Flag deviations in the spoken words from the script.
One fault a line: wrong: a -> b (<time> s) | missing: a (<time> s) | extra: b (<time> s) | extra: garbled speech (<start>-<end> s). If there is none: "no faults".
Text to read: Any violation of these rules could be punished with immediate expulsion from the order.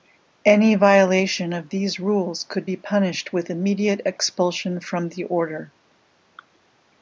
no faults